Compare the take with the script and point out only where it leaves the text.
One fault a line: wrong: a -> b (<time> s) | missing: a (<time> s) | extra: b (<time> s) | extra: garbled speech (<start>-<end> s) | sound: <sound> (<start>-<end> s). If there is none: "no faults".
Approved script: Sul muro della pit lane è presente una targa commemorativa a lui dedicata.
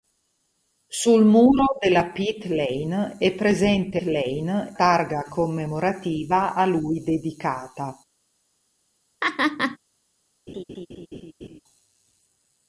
wrong: una -> lane (4.0 s)
sound: laugh (9.2-9.8 s)
sound: laugh (10.5-11.6 s)